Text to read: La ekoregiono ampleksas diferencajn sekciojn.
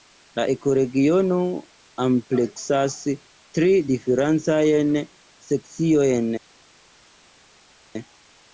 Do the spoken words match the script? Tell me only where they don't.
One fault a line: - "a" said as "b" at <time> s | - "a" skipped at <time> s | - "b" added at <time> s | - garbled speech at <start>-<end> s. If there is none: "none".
- "tri" added at 3.6 s